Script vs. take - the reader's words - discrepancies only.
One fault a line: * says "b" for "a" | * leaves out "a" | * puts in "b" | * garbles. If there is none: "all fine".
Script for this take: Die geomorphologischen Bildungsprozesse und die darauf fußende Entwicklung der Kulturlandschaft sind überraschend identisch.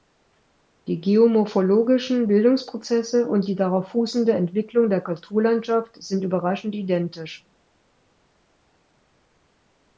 all fine